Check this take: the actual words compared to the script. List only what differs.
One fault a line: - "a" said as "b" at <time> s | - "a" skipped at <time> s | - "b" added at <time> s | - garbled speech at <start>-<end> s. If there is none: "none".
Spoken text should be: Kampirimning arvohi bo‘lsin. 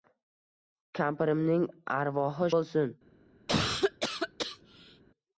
none